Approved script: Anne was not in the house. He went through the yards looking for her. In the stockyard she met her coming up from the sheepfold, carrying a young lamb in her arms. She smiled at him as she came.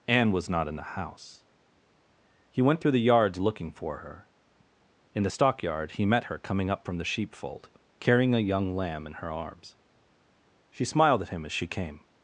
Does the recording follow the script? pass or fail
fail